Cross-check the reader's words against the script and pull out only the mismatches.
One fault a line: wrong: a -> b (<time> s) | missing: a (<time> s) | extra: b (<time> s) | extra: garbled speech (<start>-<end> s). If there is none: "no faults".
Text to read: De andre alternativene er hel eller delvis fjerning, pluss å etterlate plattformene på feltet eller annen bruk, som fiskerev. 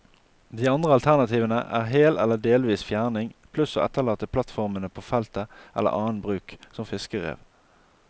no faults